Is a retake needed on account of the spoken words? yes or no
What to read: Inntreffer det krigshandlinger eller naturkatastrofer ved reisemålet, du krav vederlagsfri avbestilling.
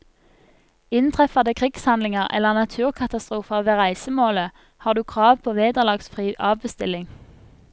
yes